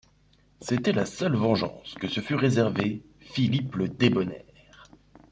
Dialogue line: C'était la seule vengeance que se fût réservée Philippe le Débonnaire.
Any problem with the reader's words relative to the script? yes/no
no